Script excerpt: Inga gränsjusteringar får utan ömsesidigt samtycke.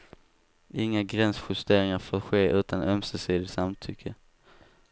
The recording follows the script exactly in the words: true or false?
false